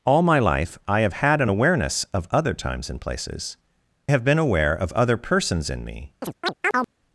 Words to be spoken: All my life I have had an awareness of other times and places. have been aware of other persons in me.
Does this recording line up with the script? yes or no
yes